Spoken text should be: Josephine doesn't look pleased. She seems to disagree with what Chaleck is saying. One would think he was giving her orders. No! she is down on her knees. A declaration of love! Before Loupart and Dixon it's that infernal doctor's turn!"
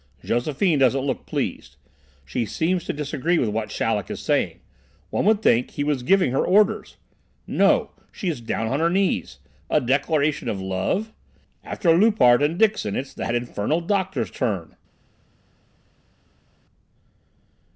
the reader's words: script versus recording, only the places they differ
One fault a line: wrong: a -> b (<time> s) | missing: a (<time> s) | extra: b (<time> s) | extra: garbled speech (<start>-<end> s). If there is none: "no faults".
wrong: Before -> After (11.7 s)